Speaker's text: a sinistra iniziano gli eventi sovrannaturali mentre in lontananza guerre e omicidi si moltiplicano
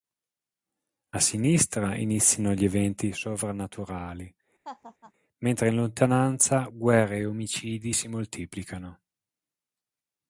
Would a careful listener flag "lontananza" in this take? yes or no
no